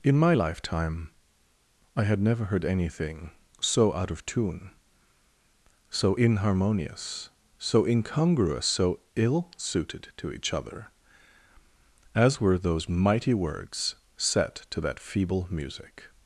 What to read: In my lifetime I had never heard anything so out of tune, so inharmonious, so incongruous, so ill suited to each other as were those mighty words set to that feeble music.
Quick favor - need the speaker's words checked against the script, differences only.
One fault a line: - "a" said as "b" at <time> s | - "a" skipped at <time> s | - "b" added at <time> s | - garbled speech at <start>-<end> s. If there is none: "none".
none